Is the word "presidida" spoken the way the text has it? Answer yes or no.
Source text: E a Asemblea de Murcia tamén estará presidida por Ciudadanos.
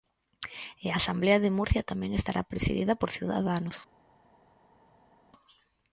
yes